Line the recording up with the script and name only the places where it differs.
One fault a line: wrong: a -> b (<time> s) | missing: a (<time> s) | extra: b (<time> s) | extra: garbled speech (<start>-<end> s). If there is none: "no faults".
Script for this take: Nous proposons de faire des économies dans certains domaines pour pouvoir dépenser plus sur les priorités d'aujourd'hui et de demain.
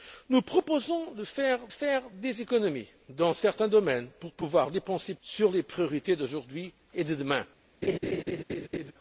extra: faire (1.7 s)
missing: plus (5.1 s)